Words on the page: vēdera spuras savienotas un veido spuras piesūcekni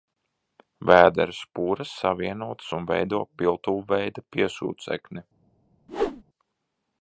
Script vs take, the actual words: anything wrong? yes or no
yes